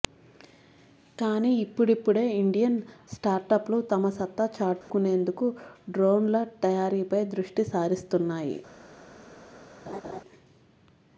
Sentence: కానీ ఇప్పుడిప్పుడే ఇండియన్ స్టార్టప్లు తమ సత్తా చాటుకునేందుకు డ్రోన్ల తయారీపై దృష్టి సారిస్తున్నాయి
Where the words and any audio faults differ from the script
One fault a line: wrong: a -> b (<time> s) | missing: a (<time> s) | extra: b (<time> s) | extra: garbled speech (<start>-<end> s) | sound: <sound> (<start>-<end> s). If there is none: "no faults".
sound: dropout (4.8-4.9 s)
sound: laugh (9.9-10.2 s)